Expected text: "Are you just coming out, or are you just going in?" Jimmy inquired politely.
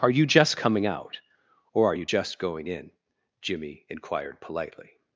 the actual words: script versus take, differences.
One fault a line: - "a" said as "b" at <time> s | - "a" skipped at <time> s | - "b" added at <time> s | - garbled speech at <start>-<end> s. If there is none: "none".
none